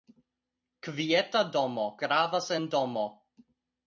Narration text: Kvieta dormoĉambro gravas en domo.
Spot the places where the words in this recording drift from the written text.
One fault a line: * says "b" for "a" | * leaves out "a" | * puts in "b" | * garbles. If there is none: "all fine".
* says "domo" for "dormoĉambro"